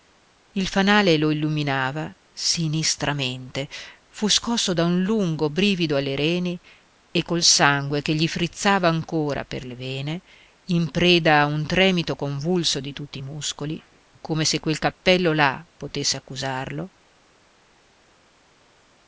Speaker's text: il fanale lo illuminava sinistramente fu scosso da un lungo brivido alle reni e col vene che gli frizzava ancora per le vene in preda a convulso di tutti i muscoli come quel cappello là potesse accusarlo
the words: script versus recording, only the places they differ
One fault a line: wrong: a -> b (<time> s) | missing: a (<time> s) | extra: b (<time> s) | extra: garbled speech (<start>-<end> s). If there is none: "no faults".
wrong: vene -> sangue (7.4 s)
extra: un tremito (11.4 s)
extra: se (14.5 s)